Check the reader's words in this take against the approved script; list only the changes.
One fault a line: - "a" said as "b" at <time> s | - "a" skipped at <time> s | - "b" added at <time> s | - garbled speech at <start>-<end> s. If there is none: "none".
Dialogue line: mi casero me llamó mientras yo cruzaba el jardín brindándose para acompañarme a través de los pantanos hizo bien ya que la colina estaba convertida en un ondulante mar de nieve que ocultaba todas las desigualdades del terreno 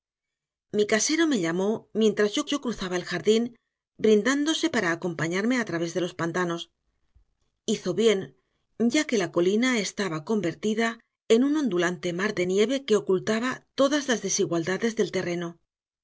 - "yo" added at 2.5 s